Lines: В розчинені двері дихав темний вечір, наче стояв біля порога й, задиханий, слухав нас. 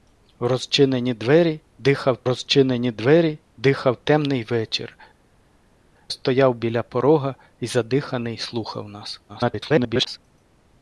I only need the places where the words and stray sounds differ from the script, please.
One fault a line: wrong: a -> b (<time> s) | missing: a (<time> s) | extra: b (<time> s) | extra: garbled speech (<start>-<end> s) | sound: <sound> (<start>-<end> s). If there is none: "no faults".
extra: розчинені двері дихав (2.2 s)
missing: наче (5.0 s)
extra: garbled speech (9.3-10.2 s)